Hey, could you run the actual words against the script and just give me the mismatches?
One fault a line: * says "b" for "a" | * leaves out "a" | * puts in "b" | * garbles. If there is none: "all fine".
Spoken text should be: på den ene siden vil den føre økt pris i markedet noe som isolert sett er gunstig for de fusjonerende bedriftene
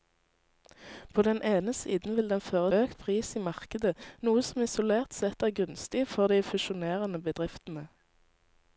all fine